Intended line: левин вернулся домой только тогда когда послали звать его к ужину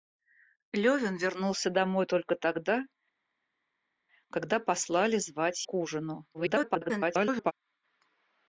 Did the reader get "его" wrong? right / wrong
wrong